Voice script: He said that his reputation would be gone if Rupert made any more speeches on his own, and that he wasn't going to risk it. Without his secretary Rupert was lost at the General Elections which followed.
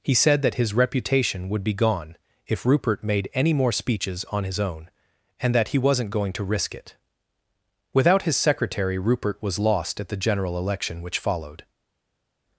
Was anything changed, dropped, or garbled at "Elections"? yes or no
yes